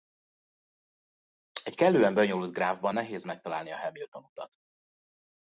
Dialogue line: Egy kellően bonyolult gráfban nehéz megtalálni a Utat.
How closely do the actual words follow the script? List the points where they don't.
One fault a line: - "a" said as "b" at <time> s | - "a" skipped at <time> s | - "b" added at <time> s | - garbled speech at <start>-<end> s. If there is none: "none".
- "Hamilton" added at 3.8 s